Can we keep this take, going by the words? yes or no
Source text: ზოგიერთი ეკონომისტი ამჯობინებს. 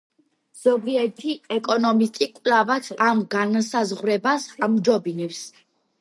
no